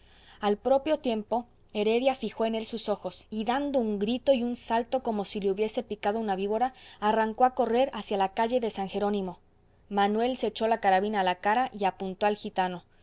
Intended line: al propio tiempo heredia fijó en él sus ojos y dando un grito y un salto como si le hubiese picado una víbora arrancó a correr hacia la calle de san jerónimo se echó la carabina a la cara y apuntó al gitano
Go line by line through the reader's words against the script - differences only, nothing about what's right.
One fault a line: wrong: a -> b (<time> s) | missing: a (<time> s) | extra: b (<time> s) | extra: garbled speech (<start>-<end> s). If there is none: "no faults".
extra: manuel (9.9 s)